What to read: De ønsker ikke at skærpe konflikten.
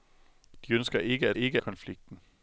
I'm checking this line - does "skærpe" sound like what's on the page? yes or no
no